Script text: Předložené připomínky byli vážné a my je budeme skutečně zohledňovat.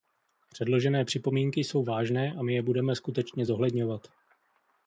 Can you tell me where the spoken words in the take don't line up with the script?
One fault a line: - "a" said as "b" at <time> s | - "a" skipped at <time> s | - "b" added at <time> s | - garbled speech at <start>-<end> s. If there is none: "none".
- "byli" said as "jsou" at 1.6 s